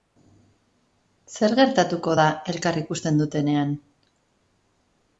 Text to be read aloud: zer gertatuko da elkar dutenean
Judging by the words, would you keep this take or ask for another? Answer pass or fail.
fail